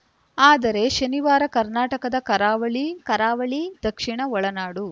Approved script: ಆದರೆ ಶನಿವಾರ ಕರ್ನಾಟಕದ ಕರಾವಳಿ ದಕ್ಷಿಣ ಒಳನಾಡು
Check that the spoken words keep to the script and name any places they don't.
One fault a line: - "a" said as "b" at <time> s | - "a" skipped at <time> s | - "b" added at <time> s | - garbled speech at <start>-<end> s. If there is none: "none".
- "ಕರಾವಳಿ" added at 3.1 s